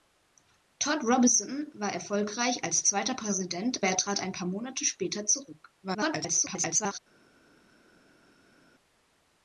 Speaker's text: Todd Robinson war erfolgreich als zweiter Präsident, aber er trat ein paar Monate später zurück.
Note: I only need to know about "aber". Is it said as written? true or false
false